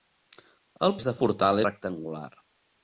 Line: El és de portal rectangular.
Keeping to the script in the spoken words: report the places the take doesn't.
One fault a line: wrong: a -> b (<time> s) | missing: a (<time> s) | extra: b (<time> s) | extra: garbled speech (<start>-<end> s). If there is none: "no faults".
no faults